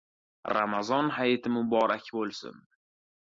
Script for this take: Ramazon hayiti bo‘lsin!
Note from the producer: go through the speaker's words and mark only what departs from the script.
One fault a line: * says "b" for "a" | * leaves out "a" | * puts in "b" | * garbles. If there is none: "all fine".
* puts in "muborak"